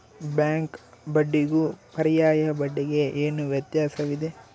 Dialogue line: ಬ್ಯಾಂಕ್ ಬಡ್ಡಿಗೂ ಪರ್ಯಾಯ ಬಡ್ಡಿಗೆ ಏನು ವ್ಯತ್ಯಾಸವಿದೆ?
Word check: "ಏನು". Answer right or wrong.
right